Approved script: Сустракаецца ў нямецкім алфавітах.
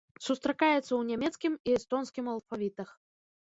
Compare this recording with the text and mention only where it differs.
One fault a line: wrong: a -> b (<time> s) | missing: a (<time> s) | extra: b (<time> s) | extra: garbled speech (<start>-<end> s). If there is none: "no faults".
extra: і эстонскім (1.7 s)